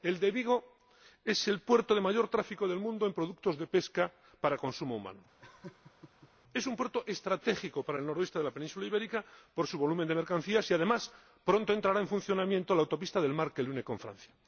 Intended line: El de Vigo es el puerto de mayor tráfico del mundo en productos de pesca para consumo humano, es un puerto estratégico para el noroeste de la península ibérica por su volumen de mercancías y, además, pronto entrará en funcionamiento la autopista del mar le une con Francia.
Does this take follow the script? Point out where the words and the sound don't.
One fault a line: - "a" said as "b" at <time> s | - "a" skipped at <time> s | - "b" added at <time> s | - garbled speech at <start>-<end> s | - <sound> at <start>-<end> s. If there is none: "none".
- laugh at 5.4-6.3 s
- "que" added at 13.5 s